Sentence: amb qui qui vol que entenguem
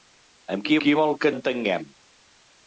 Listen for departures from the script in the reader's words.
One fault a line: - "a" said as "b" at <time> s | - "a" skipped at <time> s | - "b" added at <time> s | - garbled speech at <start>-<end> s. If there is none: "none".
none